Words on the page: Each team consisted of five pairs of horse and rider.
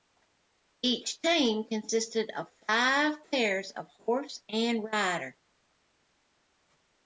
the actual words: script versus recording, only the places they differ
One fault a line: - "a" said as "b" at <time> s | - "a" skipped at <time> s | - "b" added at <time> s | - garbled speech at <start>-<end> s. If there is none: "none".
none